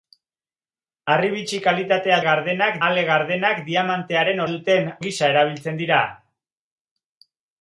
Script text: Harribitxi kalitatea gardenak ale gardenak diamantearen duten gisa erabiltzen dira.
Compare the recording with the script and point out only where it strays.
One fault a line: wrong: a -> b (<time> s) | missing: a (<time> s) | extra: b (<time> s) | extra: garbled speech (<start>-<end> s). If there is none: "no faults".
no faults